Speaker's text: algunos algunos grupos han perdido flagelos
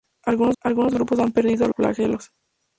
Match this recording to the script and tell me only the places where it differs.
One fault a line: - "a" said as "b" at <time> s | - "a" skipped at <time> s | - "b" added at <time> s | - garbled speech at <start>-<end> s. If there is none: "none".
none